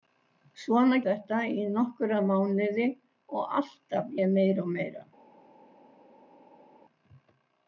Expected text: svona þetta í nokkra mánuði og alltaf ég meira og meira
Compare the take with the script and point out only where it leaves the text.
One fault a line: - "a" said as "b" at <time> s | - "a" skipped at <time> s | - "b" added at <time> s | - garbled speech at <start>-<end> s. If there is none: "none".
none